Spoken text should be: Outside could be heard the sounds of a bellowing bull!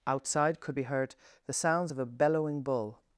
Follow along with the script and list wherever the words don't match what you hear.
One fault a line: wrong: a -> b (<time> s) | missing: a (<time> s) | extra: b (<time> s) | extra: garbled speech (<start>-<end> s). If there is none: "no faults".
no faults